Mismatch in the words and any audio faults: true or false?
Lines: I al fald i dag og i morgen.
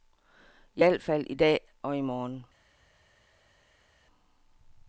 false